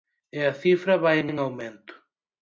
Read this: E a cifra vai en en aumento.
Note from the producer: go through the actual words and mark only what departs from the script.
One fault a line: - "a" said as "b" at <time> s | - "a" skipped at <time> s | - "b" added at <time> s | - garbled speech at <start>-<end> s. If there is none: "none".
none